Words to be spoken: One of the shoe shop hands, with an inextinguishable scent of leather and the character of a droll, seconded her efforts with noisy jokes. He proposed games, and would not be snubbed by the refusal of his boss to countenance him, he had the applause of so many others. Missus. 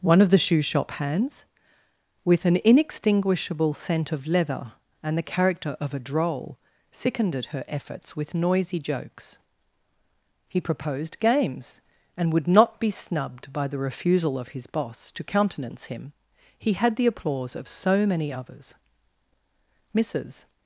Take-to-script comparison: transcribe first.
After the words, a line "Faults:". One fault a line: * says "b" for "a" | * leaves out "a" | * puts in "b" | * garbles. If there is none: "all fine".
One of the shoe shop hands, with an inextinguishable scent of leather and the character of a droll, seconded her efforts with noisy jokes. He proposed games, and would not be snubbed by the refusal of his boss to countenance him, he had the applause of so many others. Missus.
Faults:
all fine